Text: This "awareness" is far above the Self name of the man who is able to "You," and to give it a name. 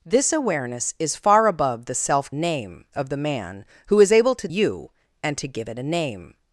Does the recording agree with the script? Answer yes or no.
yes